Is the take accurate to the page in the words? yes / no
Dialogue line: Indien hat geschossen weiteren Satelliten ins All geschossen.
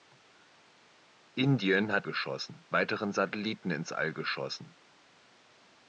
yes